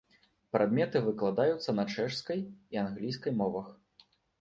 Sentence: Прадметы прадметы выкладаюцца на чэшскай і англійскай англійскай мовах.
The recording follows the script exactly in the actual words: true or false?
false